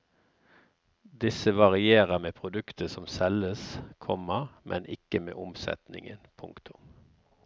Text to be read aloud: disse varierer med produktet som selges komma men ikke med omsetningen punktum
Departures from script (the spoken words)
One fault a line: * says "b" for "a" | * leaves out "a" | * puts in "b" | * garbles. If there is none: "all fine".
all fine